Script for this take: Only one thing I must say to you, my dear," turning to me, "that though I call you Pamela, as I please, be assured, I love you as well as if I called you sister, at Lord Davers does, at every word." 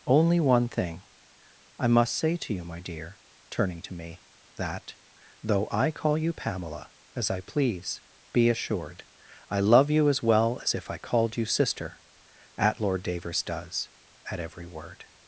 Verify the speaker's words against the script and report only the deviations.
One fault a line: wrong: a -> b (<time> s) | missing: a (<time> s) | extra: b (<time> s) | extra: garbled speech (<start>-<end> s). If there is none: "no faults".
no faults